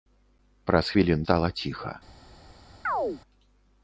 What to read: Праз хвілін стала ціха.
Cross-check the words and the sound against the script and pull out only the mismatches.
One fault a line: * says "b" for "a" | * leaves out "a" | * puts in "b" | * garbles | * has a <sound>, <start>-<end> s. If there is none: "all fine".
* has a chirp, 2.8-3.2 s